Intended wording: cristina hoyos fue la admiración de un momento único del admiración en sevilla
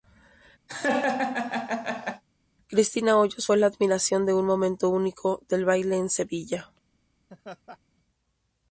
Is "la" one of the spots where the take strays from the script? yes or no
no